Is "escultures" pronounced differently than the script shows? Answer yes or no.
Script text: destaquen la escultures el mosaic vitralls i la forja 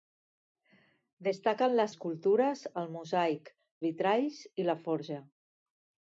no